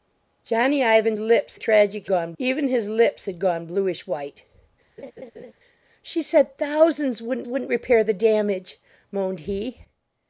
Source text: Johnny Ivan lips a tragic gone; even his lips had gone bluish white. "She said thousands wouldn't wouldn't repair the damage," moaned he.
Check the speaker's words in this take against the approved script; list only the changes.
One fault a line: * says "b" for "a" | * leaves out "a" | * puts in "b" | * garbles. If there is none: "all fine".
all fine